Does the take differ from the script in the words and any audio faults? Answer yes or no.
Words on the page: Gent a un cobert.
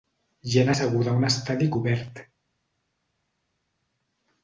yes